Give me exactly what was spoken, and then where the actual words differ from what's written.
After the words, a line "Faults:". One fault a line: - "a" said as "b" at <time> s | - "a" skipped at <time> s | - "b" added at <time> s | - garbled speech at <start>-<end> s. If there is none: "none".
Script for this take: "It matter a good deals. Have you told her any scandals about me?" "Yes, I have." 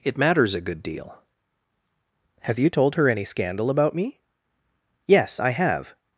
"It matters a good deal. Have you told her any scandal about me?" "Yes, I have."
Faults:
- "matter" said as "matters" at 0.2 s
- "deals" said as "deal" at 0.8 s
- "scandals" said as "scandal" at 3.2 s